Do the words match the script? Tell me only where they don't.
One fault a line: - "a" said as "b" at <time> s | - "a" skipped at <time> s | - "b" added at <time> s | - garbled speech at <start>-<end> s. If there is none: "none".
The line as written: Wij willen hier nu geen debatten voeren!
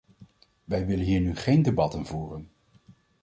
none